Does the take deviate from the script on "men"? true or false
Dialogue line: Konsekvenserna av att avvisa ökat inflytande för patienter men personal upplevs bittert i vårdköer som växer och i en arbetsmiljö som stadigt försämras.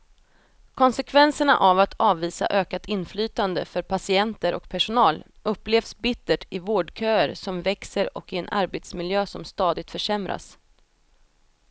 true